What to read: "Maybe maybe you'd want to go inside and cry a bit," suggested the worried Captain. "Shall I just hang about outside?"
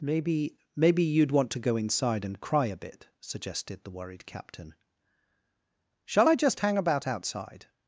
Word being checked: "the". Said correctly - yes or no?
yes